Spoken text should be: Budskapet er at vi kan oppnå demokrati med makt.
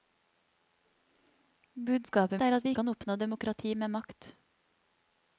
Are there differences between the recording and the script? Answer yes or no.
no